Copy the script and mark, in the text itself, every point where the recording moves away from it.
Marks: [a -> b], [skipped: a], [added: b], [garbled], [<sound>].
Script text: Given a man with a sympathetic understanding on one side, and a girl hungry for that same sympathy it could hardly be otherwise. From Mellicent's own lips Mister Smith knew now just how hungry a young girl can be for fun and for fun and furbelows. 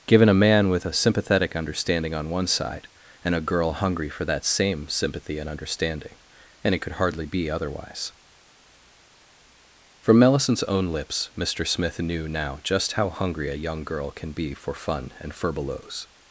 Given a man with a sympathetic understanding on one side, and a girl hungry for that same sympathy [added: and understanding and] it could hardly be otherwise. From Mellicent's own lips Mister Smith knew now just how hungry a young girl can be for fun and [skipped: for fun and] furbelows.